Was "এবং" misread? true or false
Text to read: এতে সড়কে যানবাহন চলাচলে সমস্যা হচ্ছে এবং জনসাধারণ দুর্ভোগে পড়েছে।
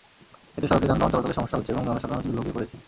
false